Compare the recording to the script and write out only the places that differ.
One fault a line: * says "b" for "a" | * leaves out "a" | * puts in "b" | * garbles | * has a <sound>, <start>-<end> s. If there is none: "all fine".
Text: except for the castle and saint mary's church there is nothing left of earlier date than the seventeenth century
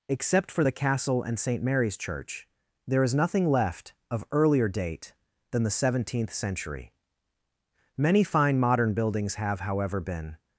* puts in "many fine modern buildings have however been"